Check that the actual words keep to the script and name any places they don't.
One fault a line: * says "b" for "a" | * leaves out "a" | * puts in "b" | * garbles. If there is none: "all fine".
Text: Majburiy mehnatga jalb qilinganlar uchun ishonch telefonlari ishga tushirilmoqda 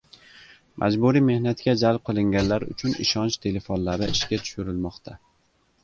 all fine